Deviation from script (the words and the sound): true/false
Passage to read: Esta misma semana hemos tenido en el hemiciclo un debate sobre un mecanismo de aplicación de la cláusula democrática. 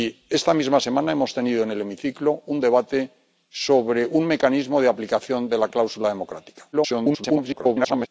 true